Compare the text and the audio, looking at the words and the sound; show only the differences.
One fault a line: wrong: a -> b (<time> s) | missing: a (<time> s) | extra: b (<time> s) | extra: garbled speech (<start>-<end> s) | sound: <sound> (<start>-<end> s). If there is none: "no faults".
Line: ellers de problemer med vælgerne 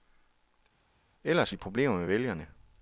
no faults